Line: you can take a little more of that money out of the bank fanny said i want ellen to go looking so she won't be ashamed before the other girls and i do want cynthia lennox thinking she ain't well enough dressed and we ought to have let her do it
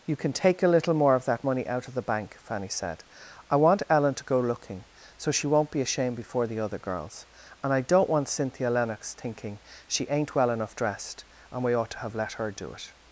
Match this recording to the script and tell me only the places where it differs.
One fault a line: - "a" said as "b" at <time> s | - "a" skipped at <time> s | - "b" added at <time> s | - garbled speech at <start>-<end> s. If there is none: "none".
- "do" said as "don't" at 7.8 s